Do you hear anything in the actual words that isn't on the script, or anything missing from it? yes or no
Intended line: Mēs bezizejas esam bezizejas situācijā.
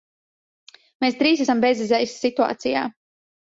yes